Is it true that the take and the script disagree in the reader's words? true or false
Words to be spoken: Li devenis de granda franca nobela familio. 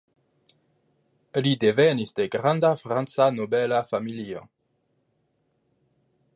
false